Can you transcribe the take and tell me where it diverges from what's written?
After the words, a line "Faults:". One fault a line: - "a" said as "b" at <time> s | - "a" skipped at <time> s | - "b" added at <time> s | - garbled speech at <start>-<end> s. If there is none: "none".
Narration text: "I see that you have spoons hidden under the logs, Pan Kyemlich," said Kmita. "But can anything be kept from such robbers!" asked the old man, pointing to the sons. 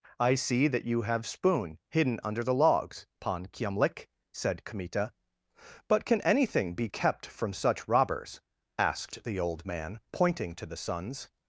"I see that you have spoon hidden under the logs, Pan Kyemlich," said Kmita. "But can anything be kept from such robbers!" asked the old man, pointing to the sons.
Faults:
- "spoons" said as "spoon" at 1.3 s